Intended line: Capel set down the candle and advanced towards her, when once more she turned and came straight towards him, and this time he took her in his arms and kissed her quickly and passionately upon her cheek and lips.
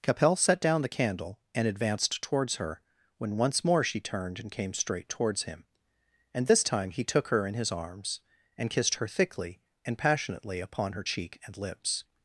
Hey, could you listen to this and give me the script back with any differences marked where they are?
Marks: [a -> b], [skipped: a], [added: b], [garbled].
Capel set down the candle and advanced towards her, when once more she turned and came straight towards him, and this time he took her in his arms and kissed her [quickly -> thickly] and passionately upon her cheek and lips.